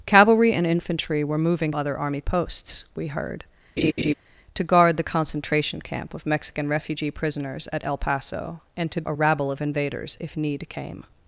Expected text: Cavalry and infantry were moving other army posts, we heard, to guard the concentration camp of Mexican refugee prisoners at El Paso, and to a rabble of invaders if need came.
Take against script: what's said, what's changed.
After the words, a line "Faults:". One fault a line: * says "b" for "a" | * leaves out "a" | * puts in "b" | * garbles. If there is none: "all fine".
Cavalry and infantry were moving other army posts, we heard, to guard the concentration camp of Mexican refugee prisoners at El Paso, and to a rabble of invaders if need came.
Faults:
all fine